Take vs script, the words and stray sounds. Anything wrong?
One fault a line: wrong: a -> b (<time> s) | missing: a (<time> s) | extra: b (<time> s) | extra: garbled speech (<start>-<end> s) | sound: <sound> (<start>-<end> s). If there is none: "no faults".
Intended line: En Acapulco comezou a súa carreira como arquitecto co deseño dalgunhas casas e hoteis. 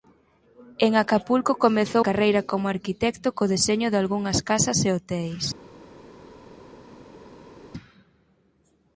missing: a súa (2.0 s)